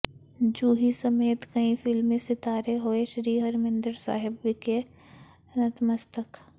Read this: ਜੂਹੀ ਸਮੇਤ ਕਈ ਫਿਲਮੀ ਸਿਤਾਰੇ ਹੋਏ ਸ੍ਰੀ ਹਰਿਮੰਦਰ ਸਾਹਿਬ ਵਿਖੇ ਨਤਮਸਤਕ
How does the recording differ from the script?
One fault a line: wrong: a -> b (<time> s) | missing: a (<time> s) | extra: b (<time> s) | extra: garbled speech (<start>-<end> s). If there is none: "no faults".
no faults